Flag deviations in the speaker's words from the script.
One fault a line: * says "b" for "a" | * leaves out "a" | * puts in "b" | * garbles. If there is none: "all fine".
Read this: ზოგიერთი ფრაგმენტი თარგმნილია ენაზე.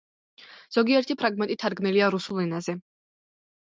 * puts in "რუსულ"